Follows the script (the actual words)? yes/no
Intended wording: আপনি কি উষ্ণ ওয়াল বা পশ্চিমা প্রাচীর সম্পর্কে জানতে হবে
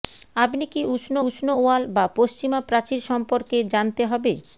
no